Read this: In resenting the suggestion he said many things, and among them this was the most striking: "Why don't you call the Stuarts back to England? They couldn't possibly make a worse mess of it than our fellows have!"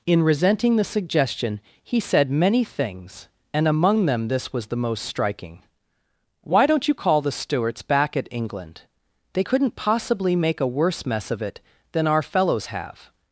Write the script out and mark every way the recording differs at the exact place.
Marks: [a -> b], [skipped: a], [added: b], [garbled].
In resenting the suggestion he said many things, and among them this was the most striking: "Why don't you call the Stuarts back [to -> at] England? They couldn't possibly make a worse mess of it than our fellows have!"